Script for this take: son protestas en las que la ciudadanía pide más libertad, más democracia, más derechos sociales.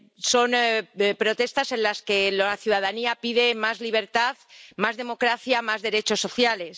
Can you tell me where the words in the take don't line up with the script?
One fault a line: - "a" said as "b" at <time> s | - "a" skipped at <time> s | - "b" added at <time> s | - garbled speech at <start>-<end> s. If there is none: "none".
none